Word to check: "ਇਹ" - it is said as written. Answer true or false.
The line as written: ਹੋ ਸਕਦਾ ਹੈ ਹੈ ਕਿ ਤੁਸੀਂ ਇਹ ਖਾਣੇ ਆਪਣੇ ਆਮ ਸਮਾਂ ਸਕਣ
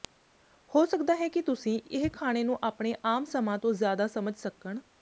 true